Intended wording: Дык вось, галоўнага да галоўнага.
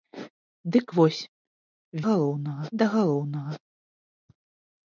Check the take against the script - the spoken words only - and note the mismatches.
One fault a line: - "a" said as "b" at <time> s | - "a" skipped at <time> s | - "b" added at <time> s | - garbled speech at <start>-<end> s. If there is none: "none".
none